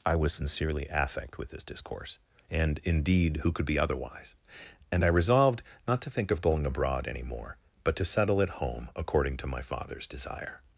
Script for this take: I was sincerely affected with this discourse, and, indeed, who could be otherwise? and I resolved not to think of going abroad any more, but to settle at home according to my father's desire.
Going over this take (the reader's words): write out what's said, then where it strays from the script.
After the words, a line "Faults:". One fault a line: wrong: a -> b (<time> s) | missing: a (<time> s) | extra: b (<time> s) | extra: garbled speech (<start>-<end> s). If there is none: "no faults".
I was sincerely affect with this discourse, and, indeed, who could be otherwise? and I resolved not to think of going abroad any more, but to settle at home according to my father's desire.
Faults:
wrong: affected -> affect (0.9 s)